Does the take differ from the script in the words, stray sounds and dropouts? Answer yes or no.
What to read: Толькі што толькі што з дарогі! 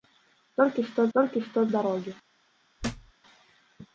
yes